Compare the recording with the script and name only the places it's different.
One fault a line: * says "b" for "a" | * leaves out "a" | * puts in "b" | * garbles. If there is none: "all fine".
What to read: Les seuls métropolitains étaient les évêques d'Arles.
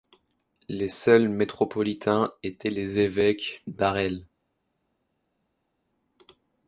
all fine